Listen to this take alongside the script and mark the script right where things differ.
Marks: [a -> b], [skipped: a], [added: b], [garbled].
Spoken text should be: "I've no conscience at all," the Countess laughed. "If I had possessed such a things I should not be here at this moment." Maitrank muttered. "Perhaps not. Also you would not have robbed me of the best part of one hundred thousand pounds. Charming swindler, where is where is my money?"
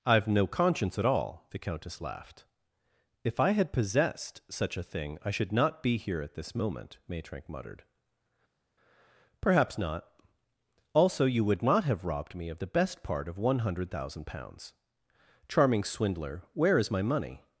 "I've no conscience at all," the Countess laughed. "If I had possessed such a [things -> thing] I should not be here at this moment." Maitrank muttered. "Perhaps not. Also you would not have robbed me of the best part of one hundred thousand pounds. Charming swindler, where is [skipped: where is] my money?"